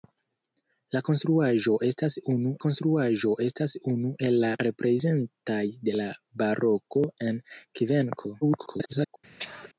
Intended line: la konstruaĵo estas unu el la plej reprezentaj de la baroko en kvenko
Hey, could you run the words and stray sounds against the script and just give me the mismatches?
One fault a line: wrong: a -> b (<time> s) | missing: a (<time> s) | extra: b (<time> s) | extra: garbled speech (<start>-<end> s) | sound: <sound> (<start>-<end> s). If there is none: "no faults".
extra: konstruaĵo estas unu (2.7 s)
missing: plej (4.5 s)
extra: garbled speech (8.4-9.2 s)
sound: throat clearing (9.4-9.7 s)